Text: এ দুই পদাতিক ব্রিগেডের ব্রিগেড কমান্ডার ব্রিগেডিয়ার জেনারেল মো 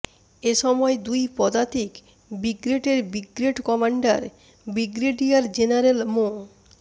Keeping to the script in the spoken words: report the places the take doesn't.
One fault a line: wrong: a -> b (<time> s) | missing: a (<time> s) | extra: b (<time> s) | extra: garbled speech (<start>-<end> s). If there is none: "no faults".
extra: সময় (0.6 s)